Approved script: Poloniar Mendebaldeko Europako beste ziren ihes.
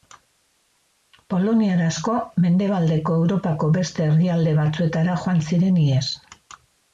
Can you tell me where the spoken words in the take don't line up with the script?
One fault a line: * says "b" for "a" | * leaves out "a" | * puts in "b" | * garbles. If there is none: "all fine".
* puts in "asko"
* puts in "herrialde batzuetara joan"